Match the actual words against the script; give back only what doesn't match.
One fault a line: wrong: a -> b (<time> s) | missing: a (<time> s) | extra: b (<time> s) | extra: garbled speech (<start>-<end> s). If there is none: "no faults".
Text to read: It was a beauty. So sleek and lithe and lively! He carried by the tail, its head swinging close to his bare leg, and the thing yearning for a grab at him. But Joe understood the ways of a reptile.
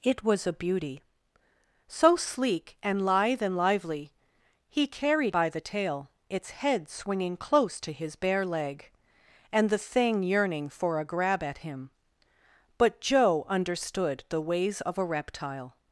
no faults